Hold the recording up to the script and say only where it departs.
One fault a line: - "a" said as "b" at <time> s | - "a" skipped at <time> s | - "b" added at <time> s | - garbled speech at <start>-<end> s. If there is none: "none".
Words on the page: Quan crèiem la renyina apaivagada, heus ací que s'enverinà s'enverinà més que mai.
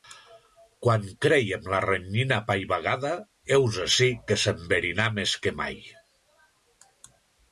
- "s'enverinà" skipped at 5.0 s